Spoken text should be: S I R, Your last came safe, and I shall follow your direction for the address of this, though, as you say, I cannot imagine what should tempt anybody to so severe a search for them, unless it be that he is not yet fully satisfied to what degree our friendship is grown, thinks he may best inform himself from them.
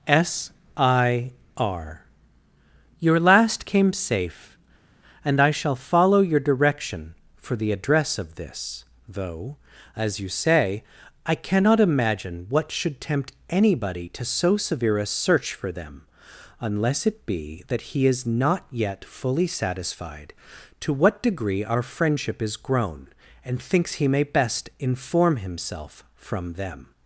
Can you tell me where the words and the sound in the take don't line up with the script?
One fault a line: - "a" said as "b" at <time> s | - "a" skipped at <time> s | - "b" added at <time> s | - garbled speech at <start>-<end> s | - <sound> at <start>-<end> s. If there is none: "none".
- "and" added at 23.4 s